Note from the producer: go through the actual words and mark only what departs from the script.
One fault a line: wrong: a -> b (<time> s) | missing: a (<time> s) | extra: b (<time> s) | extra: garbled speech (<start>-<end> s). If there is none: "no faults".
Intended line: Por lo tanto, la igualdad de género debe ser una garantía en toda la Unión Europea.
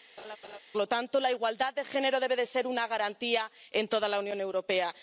no faults